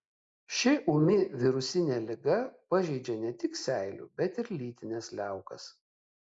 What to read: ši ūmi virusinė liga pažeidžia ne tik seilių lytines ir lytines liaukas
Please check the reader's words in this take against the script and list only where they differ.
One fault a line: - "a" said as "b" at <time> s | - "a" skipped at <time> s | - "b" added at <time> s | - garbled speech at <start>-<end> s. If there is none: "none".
- "lytines" said as "bet" at 4.2 s